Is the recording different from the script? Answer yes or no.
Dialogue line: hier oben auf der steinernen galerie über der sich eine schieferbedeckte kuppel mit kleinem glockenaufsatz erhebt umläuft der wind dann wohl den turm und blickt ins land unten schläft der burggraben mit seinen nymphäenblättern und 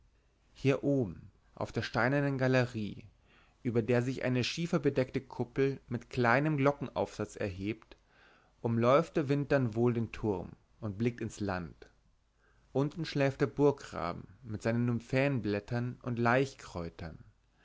no